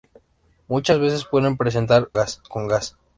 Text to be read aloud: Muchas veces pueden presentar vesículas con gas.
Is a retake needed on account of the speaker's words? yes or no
yes